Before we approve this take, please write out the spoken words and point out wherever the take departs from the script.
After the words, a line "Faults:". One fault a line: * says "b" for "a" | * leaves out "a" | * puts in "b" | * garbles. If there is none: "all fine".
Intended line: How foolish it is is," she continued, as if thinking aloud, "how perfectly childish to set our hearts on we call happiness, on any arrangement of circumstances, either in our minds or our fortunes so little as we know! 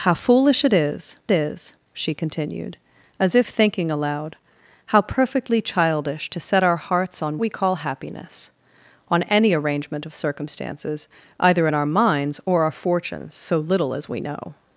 How foolish it is is," she continued, as if thinking aloud, "how perfectly childish to set our hearts on we call happiness, on any arrangement of circumstances, either in our minds or our fortunes so little as we know!
Faults:
all fine